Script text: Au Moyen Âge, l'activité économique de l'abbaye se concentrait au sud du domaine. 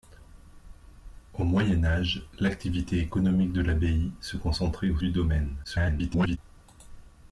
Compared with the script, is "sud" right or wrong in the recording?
wrong